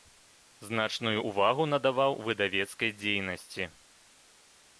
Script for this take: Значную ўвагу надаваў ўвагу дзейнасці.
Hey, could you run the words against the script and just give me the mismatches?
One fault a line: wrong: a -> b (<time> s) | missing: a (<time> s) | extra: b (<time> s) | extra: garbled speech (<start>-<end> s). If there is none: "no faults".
wrong: ўвагу -> выдавецкай (2.3 s)